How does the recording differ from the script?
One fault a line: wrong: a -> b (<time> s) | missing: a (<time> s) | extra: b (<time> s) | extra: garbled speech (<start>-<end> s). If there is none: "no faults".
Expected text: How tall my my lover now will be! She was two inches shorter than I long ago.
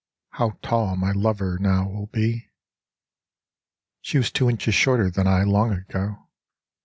missing: my (1.1 s)